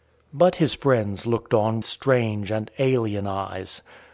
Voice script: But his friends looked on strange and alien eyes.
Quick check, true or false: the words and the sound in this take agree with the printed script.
true